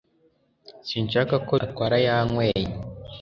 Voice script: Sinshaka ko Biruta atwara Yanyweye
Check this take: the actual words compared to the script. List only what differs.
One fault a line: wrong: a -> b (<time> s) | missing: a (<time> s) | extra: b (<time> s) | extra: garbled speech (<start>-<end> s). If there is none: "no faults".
missing: Biruta (1.5 s)